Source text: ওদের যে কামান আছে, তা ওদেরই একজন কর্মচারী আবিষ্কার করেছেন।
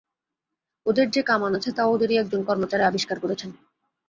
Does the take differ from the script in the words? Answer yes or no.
no